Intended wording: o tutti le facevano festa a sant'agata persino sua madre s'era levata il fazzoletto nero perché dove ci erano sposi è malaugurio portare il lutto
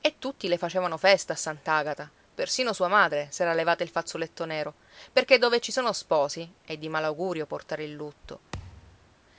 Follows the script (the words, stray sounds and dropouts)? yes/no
no